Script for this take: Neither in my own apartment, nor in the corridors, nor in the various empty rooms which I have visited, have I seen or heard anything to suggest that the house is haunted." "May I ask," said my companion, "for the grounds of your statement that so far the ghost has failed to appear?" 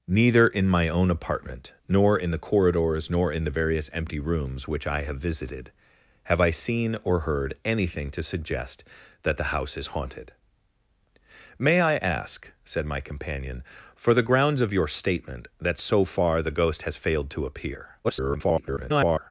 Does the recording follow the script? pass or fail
fail